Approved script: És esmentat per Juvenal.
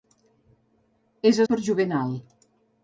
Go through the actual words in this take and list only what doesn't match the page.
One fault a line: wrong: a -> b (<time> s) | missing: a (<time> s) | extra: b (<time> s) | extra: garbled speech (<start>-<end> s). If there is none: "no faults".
missing: esmentat (1.4 s)